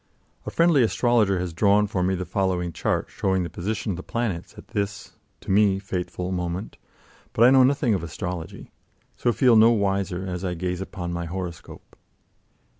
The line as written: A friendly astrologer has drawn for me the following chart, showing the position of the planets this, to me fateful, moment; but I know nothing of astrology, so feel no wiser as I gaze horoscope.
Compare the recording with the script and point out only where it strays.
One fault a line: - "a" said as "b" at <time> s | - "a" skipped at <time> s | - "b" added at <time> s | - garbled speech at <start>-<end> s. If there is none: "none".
- "at" added at 4.6 s
- "upon my" added at 10.8 s